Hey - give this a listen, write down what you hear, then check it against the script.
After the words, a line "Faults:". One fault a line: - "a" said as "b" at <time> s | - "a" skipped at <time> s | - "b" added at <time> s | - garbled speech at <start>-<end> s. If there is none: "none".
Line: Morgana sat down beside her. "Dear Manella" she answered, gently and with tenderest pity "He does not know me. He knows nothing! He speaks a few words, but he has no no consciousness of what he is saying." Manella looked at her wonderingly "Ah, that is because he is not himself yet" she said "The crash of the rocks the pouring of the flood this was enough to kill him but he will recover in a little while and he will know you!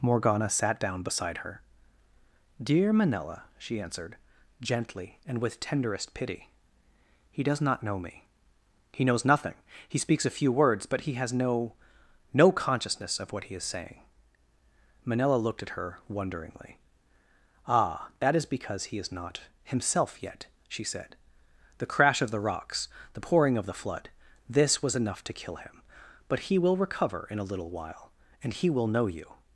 Morgana sat down beside her. "Dear Manella" she answered, gently and with tenderest pity "He does not know me. He knows nothing! He speaks a few words, but he has no no consciousness of what he is saying." Manella looked at her wonderingly "Ah, that is because he is not himself yet" she said "The crash of the rocks the pouring of the flood this was enough to kill him but he will recover in a little while and he will know you!
Faults:
none